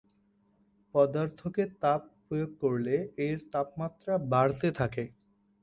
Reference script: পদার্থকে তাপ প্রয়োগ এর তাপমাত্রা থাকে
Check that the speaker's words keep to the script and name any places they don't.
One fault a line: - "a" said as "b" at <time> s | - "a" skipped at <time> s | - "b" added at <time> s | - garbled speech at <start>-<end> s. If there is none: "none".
- "করলে" added at 2.6 s
- "বাড়তে" added at 4.3 s